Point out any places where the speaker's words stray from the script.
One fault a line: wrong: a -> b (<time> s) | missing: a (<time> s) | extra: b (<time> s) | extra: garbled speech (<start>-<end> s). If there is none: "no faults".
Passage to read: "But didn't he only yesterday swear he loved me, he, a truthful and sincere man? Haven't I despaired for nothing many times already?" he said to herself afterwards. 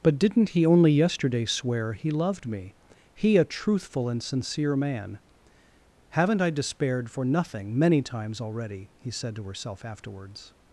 no faults